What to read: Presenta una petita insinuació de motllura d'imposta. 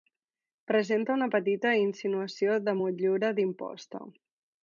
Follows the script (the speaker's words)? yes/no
yes